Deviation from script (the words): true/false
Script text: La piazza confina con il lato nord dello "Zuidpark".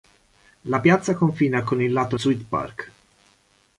true